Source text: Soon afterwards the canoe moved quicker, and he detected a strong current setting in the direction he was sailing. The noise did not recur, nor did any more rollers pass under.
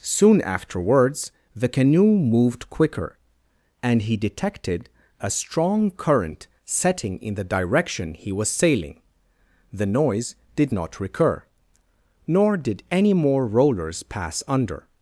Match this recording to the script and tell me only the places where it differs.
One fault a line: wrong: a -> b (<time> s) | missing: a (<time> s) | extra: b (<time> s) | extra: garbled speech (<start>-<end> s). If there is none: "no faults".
no faults